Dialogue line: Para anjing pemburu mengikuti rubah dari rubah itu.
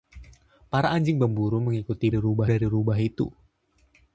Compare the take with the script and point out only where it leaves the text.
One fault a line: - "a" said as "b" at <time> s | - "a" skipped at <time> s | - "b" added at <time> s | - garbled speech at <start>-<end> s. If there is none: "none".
none